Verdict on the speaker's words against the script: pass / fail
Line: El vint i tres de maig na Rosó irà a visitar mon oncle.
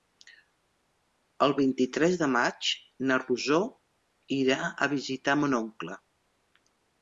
pass